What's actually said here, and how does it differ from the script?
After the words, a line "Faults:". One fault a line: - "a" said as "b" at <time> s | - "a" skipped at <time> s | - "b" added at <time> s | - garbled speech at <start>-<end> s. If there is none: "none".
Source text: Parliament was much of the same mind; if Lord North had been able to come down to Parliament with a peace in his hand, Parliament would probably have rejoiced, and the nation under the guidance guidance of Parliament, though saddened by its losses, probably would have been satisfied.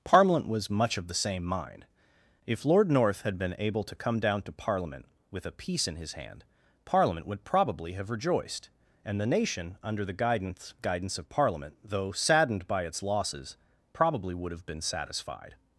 Parliament was much of the same mind; if Lord North had been able to come down to Parliament with a peace in his hand, Parliament would probably have rejoiced, and the nation under the guidance guidance of Parliament, though saddened by its losses, probably would have been satisfied.
Faults:
none